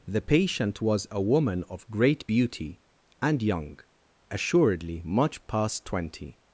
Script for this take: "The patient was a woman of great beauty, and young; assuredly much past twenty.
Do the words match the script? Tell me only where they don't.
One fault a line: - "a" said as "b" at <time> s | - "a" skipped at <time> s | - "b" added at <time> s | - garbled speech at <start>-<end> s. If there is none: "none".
none